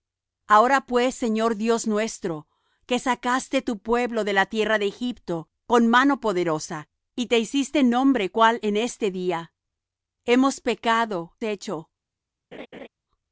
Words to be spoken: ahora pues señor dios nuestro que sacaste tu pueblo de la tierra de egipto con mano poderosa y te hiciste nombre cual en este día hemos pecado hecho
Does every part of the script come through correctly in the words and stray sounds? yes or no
no